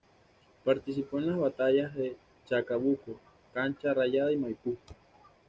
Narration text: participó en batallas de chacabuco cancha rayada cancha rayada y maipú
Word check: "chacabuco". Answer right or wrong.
right